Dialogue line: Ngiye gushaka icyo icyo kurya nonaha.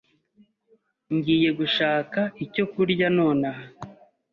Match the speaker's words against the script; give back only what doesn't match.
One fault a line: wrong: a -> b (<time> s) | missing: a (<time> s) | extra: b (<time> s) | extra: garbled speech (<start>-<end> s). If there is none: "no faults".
missing: icyo (2.6 s)